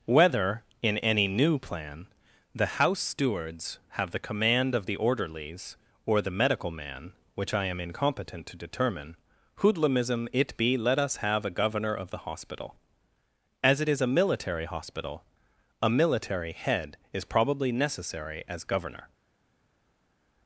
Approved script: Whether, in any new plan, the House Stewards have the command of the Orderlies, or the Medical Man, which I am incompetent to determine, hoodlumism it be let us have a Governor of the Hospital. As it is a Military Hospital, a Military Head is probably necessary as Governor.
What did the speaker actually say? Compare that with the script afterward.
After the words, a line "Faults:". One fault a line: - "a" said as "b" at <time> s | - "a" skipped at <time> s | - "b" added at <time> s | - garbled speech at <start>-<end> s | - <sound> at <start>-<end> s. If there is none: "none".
Whether, in any new plan, the House Stewards have the command of the Orderlies, or the Medical Man, which I am incompetent to determine, hoodlumism it be let us have a Governor of the Hospital. As it is a Military Hospital, a Military Head is probably necessary as Governor.
Faults:
none